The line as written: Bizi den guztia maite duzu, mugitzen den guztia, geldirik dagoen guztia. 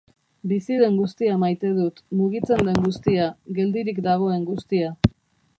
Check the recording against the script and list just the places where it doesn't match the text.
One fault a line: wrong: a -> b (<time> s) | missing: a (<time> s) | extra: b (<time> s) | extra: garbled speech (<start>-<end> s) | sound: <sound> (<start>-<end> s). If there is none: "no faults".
wrong: duzu -> dut (1.8 s)